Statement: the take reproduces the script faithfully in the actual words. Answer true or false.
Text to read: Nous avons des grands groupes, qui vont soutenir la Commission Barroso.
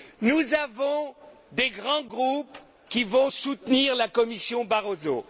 true